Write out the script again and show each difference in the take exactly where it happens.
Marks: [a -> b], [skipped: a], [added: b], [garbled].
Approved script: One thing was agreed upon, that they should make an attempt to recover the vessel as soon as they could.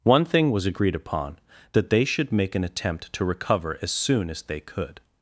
One thing was agreed upon, that they should make an attempt to recover [skipped: the vessel] as soon as they could.